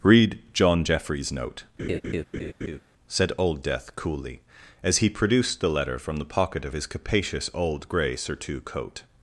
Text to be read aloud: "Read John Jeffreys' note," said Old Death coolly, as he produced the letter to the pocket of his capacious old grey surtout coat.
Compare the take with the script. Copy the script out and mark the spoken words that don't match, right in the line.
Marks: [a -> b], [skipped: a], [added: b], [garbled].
"Read John Jeffreys' note," said Old Death coolly, as he produced the letter [to -> from] the pocket of his capacious old grey surtout coat.